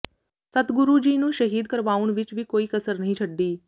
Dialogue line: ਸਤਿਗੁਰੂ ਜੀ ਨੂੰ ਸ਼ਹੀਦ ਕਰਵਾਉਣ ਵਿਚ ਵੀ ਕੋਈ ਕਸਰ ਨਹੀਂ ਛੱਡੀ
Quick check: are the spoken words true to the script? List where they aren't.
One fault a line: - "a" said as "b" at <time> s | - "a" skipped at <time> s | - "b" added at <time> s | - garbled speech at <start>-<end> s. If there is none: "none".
none